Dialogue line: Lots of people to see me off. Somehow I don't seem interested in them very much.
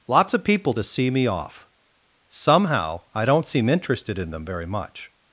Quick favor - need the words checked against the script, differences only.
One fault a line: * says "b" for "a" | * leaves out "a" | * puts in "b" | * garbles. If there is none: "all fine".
all fine